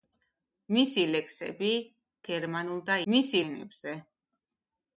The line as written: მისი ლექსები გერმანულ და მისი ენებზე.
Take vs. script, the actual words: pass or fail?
pass